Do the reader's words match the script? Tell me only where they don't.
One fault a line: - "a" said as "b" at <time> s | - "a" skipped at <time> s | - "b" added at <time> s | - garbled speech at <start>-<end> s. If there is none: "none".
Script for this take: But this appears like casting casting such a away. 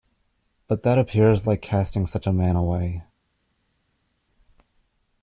- "this" said as "that" at 0.8 s
- "casting" skipped at 2.1 s
- "man" added at 2.3 s